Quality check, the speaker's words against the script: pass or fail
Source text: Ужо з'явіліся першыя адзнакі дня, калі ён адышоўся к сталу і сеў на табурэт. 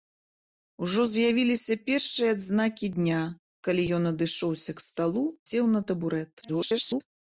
fail